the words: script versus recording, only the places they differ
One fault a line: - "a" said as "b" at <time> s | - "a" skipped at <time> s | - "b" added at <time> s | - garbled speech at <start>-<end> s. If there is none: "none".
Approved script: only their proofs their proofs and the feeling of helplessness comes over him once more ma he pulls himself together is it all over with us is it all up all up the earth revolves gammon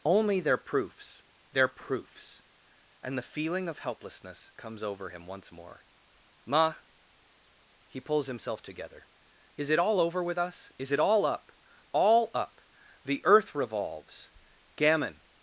none